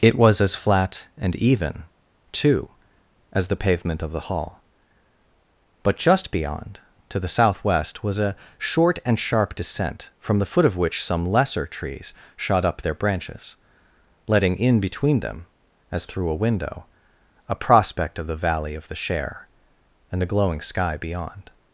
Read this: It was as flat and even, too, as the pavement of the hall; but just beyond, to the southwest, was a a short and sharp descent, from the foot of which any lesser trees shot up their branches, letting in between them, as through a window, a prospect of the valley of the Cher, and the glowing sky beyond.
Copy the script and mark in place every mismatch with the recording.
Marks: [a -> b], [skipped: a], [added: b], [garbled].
It was as flat and even, too, as the pavement of the hall; but just beyond, to the southwest, was a [skipped: a] short and sharp descent, from the foot of which [any -> some] lesser trees shot up their branches, letting in between them, as through a window, a prospect of the valley of the Cher, and the glowing sky beyond.